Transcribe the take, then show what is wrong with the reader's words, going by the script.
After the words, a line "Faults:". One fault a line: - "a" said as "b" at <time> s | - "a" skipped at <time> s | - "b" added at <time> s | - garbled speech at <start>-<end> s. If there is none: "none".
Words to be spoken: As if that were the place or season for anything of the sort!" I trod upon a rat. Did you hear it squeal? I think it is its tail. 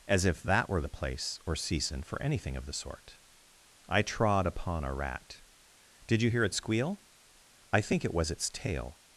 As if that were the place or season for anything of the sort!" I trod upon a rat. Did you hear it squeal? I think it was its tail.
Faults:
- "is" said as "was" at 8.1 s